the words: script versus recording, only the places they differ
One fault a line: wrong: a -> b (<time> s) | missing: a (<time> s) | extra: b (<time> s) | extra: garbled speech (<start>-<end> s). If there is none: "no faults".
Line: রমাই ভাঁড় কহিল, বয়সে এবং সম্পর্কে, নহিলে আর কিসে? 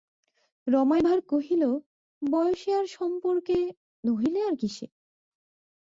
wrong: এবং -> আর (2.7 s)